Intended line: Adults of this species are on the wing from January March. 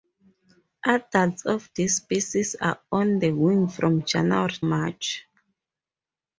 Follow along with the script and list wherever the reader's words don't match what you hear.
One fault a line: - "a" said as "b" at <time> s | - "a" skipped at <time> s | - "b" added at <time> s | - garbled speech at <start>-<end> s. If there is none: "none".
none